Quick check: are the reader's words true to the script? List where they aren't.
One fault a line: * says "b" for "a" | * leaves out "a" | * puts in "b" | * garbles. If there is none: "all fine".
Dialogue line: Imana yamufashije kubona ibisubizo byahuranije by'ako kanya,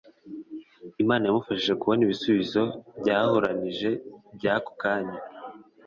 all fine